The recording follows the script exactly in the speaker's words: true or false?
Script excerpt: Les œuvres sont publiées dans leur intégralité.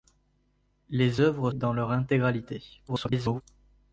false